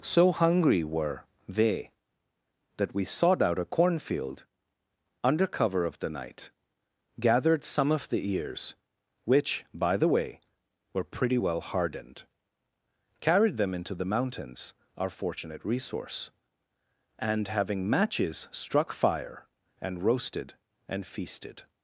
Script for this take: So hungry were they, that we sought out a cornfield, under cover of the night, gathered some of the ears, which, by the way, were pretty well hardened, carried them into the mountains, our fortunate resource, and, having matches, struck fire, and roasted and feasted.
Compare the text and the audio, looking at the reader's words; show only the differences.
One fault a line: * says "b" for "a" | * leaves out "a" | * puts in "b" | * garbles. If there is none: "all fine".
all fine